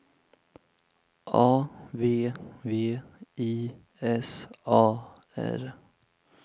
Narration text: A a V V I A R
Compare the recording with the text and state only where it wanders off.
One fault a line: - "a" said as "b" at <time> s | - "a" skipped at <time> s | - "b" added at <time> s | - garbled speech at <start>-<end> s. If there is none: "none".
- "a" skipped at 1.7 s
- "S" added at 4.0 s